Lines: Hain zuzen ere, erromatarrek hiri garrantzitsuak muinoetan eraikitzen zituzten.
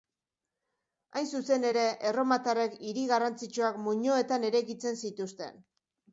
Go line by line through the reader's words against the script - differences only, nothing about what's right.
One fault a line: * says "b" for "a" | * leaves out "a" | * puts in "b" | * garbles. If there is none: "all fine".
all fine